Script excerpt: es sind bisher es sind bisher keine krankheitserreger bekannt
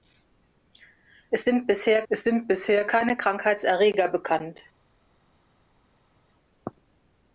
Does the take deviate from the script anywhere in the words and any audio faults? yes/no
no